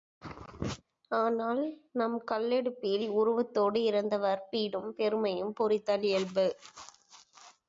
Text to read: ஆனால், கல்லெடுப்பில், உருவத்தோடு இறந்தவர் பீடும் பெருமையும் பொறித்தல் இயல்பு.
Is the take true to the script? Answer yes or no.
no